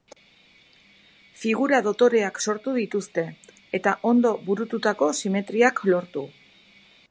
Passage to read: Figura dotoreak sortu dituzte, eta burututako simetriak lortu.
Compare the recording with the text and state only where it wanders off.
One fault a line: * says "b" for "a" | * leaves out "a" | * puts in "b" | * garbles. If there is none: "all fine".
* puts in "ondo"